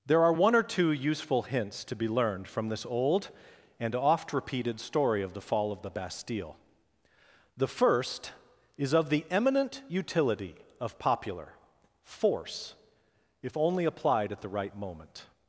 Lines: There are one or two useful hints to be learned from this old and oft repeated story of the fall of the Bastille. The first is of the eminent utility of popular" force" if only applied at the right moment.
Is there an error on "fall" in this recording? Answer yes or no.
no